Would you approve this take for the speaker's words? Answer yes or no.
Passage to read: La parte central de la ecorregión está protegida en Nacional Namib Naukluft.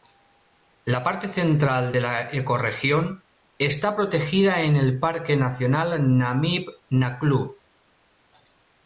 no